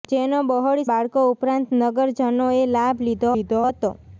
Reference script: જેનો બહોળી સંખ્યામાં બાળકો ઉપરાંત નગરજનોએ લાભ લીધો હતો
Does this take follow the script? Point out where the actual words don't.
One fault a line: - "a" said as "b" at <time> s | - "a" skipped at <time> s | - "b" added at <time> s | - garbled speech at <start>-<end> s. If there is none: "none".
- "સંખ્યામાં" skipped at 0.8 s
- "લીધો" added at 3.4 s